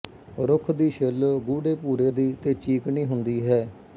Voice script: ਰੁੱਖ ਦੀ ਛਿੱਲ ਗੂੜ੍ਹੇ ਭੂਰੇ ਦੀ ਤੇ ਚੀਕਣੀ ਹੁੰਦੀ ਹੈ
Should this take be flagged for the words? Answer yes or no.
no